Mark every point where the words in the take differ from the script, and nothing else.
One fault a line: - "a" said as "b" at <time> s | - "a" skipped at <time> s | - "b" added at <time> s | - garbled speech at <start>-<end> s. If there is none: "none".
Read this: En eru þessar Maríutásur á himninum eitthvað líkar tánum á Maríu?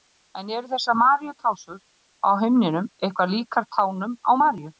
none